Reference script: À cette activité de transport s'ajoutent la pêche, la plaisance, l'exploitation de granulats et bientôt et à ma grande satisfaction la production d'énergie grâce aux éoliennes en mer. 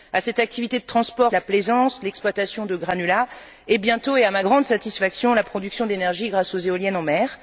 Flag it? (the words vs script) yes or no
yes